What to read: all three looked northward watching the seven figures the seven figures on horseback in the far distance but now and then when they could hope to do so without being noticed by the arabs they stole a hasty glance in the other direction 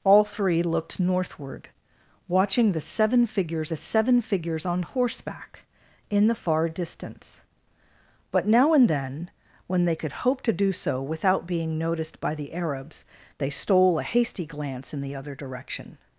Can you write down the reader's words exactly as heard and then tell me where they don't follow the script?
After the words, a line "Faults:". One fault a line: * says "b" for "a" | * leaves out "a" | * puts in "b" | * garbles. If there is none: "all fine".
all three looked northward watching the seven figures the seven figures on horseback in the far distance but now and then when they could hope to do so without being noticed by the arabs they stole a hasty glance in the other direction
Faults:
all fine